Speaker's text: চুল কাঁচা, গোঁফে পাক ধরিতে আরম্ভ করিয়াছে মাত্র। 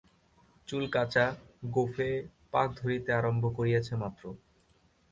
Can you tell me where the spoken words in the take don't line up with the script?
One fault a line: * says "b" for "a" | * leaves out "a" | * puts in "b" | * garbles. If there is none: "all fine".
all fine